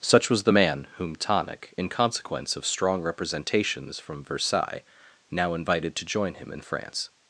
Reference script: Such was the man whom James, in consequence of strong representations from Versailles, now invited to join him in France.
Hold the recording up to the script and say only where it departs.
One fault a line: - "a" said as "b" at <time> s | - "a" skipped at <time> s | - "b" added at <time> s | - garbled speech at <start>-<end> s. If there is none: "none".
- "James" said as "Tonic" at 1.2 s